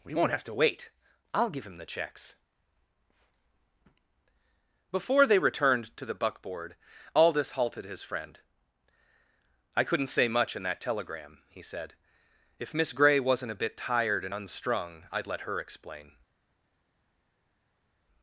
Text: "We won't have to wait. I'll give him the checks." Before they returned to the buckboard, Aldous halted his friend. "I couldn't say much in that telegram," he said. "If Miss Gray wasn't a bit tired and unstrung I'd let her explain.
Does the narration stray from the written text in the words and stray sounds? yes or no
no